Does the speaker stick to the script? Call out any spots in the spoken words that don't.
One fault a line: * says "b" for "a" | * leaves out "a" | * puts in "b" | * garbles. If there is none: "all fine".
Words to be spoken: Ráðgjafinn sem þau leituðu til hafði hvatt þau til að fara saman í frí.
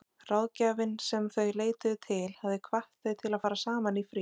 all fine